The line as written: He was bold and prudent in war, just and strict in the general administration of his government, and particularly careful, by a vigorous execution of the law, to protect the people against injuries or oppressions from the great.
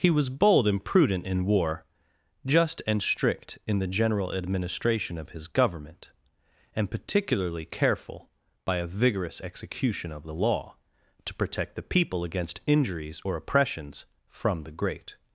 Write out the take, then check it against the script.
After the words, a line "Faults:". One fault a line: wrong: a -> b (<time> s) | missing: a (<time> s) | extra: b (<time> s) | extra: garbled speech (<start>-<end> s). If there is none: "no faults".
He was bold and prudent in war, just and strict in the general administration of his government, and particularly careful, by a vigorous execution of the law, to protect the people against injuries or oppressions from the great.
Faults:
no faults